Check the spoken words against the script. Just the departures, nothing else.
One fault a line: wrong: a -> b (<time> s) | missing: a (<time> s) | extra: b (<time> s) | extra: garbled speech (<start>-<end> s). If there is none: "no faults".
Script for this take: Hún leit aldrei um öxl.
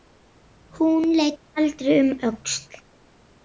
no faults